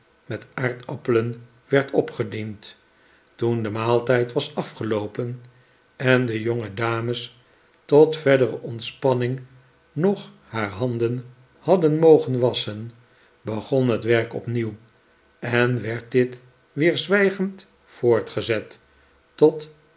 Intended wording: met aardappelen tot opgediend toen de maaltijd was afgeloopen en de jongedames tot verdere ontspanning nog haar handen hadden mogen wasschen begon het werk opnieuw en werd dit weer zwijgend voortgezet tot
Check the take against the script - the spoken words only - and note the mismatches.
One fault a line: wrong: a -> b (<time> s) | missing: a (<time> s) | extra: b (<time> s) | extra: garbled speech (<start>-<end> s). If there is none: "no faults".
wrong: tot -> werd (1.7 s)